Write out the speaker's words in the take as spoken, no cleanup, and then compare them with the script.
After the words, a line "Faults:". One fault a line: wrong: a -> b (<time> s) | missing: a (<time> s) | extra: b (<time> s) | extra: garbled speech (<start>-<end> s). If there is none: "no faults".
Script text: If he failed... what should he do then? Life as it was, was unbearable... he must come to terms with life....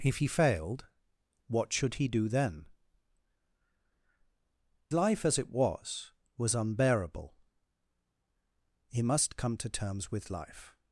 If he failed... what should he do then? Life as it was, was unbearable... he must come to terms with life....
Faults:
no faults